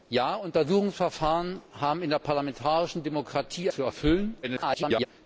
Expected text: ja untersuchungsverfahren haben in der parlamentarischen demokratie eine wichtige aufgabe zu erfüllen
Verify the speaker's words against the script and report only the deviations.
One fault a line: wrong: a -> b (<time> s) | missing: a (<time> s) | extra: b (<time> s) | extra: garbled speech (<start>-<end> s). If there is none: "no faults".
missing: eine wichtige aufgabe (3.7 s)
extra: garbled speech (4.4-5.1 s)